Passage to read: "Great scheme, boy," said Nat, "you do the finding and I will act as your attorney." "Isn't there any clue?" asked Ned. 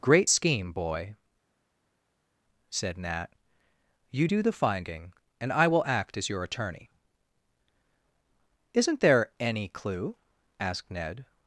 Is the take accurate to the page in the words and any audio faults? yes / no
yes